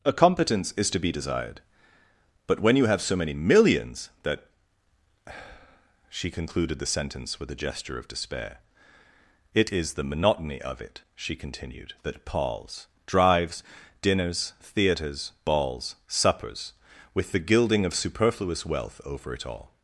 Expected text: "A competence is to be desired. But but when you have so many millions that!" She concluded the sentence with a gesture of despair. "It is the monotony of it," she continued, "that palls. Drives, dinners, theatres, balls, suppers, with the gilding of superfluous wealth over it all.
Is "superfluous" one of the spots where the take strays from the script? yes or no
no